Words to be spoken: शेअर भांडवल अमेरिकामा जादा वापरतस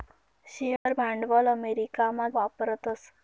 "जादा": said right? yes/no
no